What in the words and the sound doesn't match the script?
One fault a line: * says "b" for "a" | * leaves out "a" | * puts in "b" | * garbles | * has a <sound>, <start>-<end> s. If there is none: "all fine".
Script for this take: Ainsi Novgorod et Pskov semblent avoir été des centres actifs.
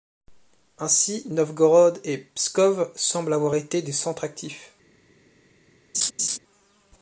* has a laugh, 5.9-6.4 s